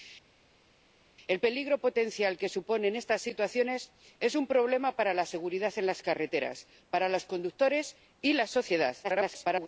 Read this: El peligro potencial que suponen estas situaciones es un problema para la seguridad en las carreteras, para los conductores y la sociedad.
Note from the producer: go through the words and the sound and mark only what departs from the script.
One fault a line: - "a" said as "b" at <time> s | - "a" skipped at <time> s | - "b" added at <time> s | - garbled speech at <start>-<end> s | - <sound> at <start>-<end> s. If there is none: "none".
- garbled speech at 9.0-9.7 s